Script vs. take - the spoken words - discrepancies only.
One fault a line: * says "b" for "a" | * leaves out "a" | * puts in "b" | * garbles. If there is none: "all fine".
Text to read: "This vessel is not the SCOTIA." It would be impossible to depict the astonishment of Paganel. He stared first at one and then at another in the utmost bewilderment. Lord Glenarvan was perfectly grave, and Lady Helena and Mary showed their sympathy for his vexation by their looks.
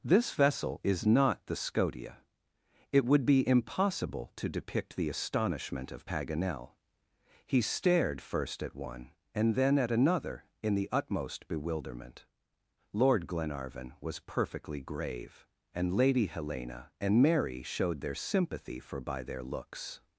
* leaves out "his vexation"